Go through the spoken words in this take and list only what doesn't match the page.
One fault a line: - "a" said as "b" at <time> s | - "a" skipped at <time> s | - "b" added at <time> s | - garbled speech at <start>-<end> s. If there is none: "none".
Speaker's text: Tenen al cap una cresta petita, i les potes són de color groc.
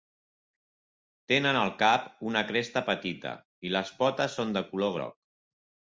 none